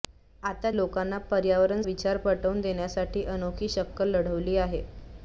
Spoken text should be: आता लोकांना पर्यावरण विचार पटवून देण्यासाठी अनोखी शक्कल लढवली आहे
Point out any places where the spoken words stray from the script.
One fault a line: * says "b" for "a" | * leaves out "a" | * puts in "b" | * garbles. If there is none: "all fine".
all fine